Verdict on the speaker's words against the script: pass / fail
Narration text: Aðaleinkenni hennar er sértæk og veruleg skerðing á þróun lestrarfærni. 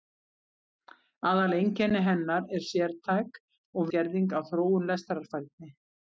fail